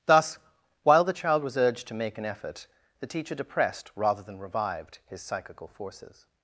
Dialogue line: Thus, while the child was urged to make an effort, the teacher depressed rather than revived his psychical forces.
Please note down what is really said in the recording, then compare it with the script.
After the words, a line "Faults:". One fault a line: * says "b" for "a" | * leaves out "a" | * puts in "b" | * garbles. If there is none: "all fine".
Thus, while the child was urged to make an effort, the teacher depressed rather than revived his psychical forces.
Faults:
all fine